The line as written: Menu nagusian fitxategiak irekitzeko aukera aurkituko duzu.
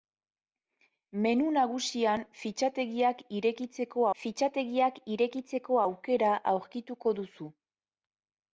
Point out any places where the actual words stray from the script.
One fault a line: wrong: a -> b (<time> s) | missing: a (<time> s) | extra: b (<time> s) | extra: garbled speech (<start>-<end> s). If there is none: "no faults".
extra: fitxategiak irekitzeko (4.2 s)